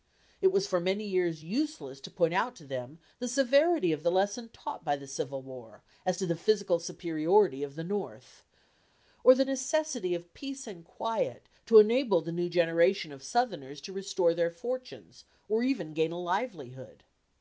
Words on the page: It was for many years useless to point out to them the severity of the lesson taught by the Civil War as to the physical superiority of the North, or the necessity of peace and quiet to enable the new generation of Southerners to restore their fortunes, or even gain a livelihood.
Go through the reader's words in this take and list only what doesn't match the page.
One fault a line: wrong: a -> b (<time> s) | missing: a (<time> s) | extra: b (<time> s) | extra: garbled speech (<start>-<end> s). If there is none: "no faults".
no faults